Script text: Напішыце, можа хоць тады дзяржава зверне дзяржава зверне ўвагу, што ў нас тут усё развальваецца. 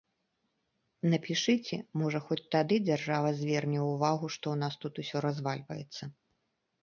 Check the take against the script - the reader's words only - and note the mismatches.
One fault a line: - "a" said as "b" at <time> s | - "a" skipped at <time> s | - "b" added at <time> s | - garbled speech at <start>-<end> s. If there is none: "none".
- "дзяржава зверне" skipped at 3.8 s